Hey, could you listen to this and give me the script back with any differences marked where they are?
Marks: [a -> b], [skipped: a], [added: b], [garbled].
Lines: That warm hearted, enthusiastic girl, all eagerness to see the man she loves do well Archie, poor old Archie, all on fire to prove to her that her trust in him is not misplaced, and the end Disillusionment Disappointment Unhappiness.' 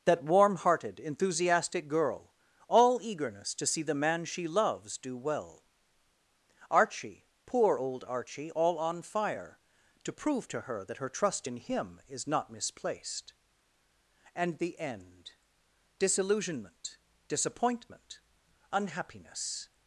That warm hearted, enthusiastic girl, all eagerness to see the man she loves do well Archie, poor old Archie, all on fire to prove to her that her trust in him is not misplaced, and the end Disillusionment Disappointment Unhappiness.'